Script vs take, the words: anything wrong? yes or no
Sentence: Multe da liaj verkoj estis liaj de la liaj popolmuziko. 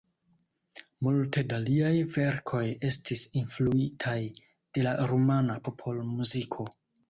yes